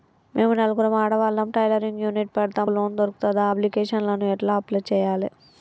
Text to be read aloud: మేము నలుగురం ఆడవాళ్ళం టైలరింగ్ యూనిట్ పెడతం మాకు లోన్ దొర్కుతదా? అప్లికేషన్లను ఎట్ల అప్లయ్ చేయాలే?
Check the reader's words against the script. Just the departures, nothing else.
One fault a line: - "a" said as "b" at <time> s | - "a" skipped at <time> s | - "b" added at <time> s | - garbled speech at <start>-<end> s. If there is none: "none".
- "మాకు" skipped at 2.7 s